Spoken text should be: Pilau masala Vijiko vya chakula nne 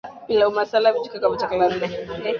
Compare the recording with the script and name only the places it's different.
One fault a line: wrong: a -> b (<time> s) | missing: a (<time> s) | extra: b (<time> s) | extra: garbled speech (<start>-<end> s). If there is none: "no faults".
no faults